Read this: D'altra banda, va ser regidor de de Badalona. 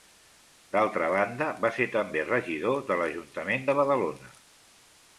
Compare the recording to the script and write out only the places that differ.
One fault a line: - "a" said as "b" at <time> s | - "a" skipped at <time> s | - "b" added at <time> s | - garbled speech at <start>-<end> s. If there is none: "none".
- "també" added at 2.0 s
- "l'Ajuntament" added at 3.0 s